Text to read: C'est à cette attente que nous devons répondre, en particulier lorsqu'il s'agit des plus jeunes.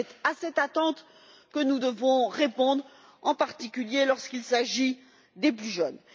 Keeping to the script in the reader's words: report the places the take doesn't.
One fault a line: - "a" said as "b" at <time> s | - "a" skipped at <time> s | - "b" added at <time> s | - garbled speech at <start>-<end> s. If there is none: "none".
none